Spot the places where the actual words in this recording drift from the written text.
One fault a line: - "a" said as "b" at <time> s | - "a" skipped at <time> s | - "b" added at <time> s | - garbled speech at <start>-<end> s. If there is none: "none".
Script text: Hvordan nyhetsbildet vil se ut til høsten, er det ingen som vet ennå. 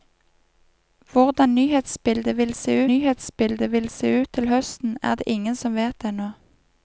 - "nyhetsbildet vil se" added at 2.9 s